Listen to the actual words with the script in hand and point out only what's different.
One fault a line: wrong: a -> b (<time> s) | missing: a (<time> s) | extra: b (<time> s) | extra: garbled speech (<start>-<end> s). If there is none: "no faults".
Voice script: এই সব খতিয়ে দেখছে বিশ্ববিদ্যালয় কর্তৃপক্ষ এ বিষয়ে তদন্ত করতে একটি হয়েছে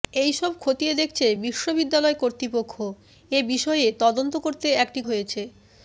no faults